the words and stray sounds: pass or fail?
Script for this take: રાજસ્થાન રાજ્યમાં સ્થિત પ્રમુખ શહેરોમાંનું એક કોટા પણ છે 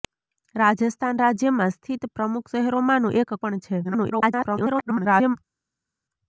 fail